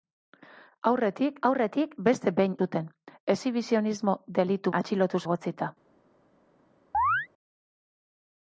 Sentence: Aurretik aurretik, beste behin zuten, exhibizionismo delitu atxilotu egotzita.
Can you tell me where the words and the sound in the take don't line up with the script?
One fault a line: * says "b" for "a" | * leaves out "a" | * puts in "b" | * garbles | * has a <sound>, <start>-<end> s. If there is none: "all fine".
* has a chirp, 6.9-7.3 s